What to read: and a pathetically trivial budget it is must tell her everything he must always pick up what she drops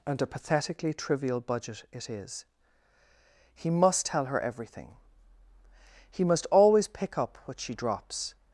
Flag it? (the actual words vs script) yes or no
yes